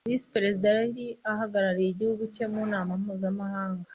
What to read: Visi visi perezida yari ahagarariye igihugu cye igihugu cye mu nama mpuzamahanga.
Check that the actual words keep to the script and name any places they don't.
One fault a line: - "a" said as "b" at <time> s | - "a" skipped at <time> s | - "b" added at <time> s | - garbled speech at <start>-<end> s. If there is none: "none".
- "visi" skipped at 0.3 s
- "igihugu cye" skipped at 2.5 s